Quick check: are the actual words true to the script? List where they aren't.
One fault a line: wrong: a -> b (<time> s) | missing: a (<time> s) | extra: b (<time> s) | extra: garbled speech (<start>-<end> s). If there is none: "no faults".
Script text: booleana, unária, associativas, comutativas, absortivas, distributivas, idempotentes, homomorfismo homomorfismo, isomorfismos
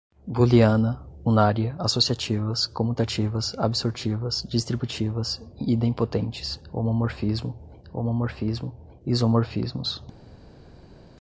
no faults